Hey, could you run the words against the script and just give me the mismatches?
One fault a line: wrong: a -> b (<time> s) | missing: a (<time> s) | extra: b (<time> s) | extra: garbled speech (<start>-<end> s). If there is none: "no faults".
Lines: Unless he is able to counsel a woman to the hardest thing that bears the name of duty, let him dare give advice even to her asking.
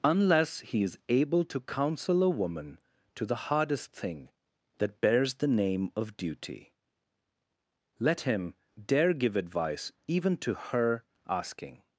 no faults